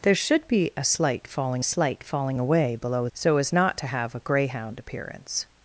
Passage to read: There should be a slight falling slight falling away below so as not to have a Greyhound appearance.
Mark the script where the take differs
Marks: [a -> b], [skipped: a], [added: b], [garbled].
There should be a slight falling slight falling away below so as not to have a Greyhound appearance.